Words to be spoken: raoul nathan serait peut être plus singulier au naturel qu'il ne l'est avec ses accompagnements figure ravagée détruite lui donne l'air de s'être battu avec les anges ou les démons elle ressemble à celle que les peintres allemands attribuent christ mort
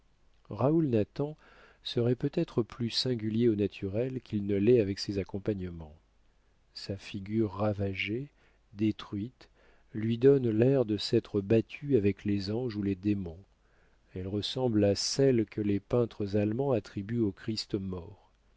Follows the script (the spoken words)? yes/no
no